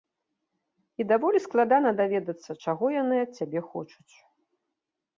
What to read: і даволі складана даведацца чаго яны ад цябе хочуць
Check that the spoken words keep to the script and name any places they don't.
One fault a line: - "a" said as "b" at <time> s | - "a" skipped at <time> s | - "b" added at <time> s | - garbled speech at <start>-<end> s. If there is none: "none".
none